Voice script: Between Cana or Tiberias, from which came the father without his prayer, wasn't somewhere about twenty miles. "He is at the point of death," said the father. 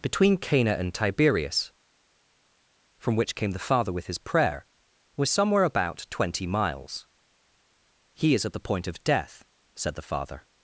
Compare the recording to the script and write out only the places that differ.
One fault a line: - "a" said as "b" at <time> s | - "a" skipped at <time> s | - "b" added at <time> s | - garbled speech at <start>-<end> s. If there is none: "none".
- "or" said as "and" at 0.7 s
- "without" said as "with" at 3.9 s
- "wasn't" said as "was" at 5.2 s